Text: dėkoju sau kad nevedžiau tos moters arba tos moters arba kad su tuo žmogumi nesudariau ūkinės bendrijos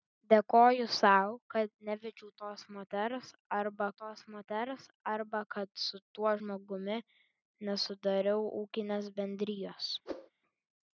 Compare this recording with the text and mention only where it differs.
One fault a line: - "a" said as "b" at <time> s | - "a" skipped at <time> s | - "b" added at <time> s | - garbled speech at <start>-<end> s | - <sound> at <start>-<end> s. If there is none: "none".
- whoosh at 10.1-10.3 s